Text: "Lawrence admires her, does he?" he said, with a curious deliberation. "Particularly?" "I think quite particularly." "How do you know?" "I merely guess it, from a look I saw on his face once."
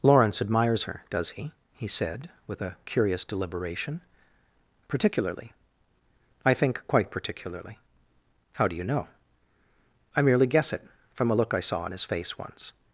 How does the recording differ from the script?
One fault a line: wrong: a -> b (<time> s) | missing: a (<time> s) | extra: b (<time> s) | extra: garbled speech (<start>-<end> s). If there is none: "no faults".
no faults